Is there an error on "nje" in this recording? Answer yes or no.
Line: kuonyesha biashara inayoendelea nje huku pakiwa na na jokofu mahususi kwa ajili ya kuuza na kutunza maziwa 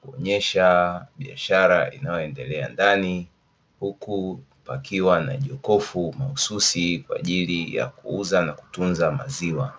yes